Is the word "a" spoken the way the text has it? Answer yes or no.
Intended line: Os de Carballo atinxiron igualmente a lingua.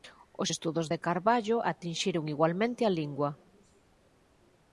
yes